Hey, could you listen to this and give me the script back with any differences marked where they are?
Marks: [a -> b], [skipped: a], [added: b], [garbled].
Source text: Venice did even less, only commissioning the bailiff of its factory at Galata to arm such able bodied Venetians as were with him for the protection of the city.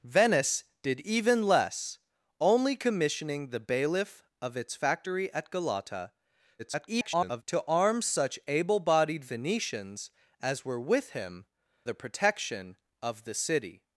Venice did even less, only commissioning the bailiff of its factory at Galata [garbled] to arm such able bodied Venetians as were with him [skipped: for] the protection of the city.